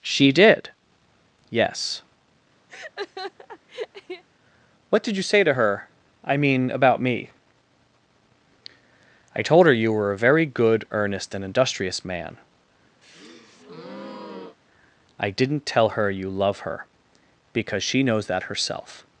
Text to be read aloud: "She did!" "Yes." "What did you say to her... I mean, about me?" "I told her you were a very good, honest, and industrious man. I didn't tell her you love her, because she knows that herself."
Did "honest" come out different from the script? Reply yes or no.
yes